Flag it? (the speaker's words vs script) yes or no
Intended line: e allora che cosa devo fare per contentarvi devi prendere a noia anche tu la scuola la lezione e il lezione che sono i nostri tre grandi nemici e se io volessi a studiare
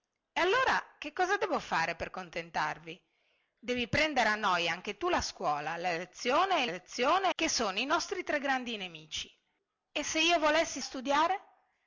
no